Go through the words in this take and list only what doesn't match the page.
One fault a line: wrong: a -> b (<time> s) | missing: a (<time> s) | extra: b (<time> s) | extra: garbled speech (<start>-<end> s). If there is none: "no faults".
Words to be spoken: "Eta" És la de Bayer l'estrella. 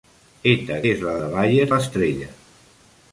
no faults